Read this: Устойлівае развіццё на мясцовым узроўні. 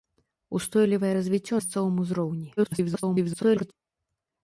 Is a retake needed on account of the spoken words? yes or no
yes